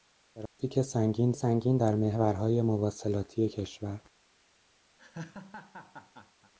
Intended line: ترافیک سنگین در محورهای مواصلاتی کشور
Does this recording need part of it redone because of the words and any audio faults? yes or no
yes